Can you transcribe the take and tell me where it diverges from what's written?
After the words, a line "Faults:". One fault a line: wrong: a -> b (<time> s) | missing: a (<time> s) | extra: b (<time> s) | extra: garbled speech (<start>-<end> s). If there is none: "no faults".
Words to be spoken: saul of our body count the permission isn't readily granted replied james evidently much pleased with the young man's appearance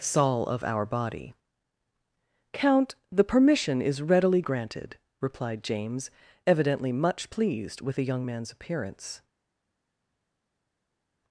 saul of our body count the permission is readily granted replied james evidently much pleased with the young man's appearance
Faults:
wrong: isn't -> is (3.8 s)